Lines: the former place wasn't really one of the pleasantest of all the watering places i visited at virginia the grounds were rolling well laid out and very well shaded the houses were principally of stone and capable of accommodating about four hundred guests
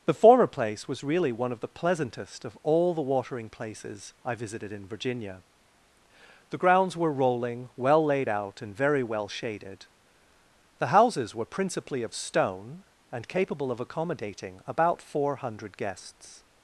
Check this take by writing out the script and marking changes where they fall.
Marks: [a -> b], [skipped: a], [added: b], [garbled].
the former place [wasn't -> was] really one of the pleasantest of all the watering places i visited [at -> in] virginia the grounds were rolling well laid out and very well shaded the houses were principally of stone and capable of accommodating about four hundred guests